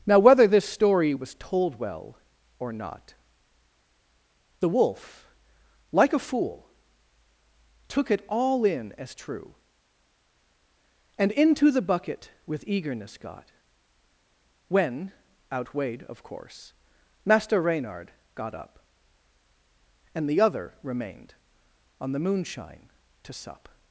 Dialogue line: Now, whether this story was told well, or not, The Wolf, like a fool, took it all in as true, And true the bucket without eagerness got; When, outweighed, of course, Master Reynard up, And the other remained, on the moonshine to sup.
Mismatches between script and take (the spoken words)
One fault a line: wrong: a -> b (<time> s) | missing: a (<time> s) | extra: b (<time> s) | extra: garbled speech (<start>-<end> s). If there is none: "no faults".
wrong: true -> into (11.3 s)
wrong: without -> with (12.4 s)
extra: got (18.3 s)